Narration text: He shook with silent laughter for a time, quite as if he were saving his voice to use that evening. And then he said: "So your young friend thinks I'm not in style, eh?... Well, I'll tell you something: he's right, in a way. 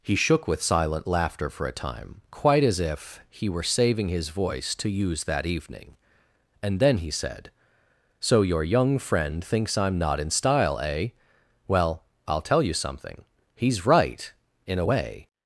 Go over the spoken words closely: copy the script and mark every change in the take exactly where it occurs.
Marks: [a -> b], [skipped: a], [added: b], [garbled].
He shook with silent laughter for a time, quite as if he were saving his voice to use that evening. And then he said: "So your young friend thinks I'm not in style, eh?... Well, I'll tell you something: he's right, in a way.